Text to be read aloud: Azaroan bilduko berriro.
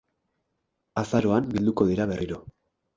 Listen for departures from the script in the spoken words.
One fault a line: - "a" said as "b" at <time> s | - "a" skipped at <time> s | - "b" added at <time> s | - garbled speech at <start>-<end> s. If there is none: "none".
- "dira" added at 1.9 s